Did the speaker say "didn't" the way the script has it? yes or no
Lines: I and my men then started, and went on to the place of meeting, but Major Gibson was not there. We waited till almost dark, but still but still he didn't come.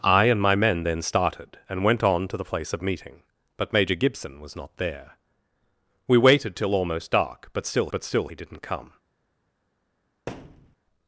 yes